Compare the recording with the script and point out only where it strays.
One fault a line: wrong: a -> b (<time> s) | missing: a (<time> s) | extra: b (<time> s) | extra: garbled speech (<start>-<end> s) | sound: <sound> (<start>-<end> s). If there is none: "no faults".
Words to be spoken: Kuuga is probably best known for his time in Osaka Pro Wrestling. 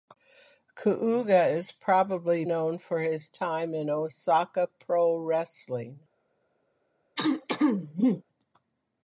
missing: best (2.4 s)
sound: throat clearing (7.2-8.2 s)